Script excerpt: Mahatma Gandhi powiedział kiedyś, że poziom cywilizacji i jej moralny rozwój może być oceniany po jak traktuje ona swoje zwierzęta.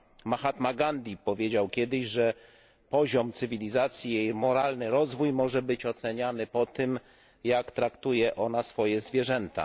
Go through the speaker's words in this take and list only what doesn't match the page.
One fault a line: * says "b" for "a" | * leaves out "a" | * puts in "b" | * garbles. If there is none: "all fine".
* puts in "tym"